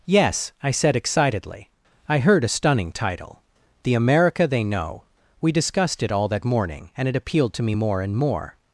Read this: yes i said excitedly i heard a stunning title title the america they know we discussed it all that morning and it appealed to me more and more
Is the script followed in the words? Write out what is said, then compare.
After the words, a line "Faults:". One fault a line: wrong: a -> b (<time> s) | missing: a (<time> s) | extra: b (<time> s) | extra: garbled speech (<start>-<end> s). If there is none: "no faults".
yes i said excitedly i heard a stunning title the america they know we discussed it all that morning and it appealed to me more and more
Faults:
missing: title (3.4 s)